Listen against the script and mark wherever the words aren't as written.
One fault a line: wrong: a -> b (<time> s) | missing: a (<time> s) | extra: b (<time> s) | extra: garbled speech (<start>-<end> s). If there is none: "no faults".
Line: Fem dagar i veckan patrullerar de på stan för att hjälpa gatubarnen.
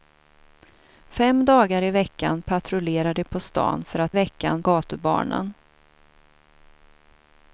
wrong: hjälpa -> veckan (4.1 s)